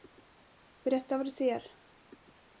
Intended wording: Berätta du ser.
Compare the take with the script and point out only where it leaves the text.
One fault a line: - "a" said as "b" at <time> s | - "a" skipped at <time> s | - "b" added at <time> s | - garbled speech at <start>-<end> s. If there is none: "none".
- "vad" added at 1.2 s